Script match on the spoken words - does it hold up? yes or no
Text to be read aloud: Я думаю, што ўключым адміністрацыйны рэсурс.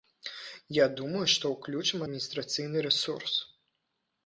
yes